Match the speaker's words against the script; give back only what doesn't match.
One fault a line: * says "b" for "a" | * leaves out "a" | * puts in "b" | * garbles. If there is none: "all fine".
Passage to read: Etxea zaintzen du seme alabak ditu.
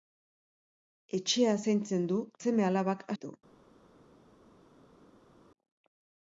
all fine